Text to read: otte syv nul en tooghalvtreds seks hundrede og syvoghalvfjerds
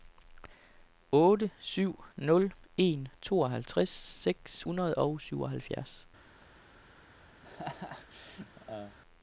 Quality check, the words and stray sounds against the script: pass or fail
fail